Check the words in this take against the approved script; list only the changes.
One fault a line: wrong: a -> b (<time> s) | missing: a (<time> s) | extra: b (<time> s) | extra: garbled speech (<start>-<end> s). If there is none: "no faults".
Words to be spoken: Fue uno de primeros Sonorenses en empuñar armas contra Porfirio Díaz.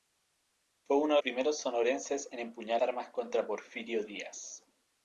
no faults